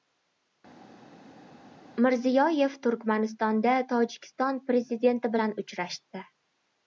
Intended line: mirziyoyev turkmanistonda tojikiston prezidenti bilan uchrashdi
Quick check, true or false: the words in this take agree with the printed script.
true